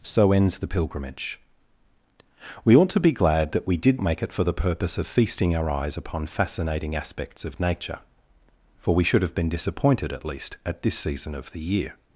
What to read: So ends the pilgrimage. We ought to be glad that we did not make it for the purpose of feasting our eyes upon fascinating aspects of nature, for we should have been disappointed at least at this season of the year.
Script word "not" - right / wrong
wrong